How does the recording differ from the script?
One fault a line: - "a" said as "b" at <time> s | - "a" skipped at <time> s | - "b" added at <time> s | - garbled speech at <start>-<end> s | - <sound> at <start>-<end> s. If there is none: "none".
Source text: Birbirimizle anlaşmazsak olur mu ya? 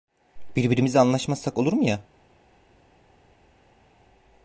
none